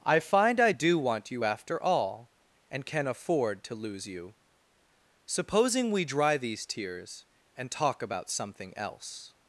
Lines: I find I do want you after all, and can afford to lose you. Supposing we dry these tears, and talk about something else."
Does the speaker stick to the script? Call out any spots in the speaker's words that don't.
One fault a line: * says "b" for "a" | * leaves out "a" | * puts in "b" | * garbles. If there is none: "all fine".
all fine